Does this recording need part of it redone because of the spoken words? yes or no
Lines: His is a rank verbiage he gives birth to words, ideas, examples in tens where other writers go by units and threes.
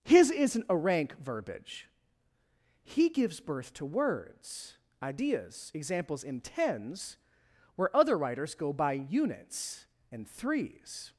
yes